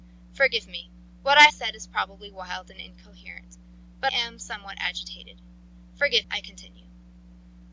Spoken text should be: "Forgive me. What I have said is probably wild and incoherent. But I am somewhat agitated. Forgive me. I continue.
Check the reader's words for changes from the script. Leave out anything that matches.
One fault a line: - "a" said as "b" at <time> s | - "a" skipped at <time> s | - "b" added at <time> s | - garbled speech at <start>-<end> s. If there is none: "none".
- "have" skipped at 1.5 s
- "I" skipped at 4.1 s
- "me" skipped at 6.3 s